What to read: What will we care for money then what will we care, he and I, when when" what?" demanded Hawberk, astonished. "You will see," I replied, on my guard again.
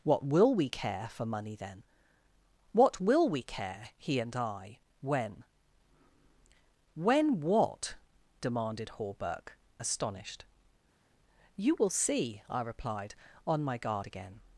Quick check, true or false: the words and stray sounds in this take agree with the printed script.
true